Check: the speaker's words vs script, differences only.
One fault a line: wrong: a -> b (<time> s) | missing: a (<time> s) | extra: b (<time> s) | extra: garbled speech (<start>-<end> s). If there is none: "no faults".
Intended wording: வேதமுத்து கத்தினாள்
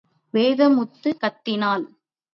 no faults